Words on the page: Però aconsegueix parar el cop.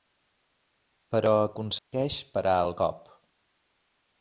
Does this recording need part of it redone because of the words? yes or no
no